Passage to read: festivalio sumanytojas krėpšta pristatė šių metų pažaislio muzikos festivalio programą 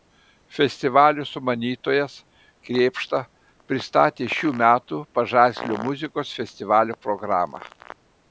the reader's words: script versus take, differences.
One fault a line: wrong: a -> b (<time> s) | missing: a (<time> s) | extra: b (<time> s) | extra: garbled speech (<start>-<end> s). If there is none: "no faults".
no faults